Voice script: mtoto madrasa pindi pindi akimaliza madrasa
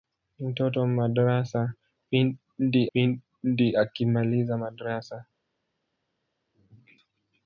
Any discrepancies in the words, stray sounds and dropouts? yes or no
no